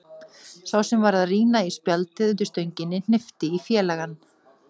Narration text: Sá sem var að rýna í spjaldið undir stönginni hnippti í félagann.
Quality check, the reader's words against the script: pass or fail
pass